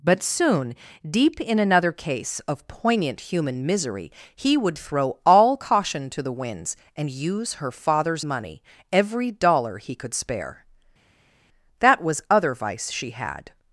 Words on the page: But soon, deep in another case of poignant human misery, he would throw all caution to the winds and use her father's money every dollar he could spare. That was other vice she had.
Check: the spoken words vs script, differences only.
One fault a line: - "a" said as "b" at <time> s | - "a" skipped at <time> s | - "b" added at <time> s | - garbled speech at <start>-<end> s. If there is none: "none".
none